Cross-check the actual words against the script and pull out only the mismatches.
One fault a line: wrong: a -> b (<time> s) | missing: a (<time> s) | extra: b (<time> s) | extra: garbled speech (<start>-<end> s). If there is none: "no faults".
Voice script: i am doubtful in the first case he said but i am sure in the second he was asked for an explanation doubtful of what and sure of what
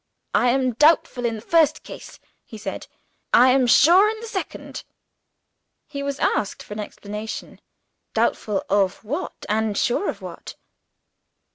missing: but (2.9 s)